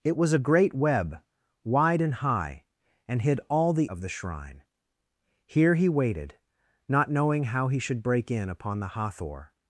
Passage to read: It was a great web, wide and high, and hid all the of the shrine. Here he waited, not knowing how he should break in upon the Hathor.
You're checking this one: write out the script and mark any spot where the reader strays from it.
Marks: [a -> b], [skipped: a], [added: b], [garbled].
It was a great web, wide and high, and hid all the of the shrine. Here he waited, not knowing how he should break in upon the Hathor.